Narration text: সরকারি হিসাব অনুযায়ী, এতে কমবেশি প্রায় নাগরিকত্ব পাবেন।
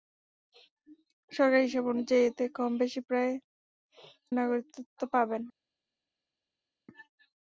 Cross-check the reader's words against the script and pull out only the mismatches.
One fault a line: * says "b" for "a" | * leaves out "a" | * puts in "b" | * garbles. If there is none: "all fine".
all fine